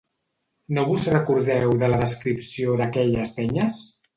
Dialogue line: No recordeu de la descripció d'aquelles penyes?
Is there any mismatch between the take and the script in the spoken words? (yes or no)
yes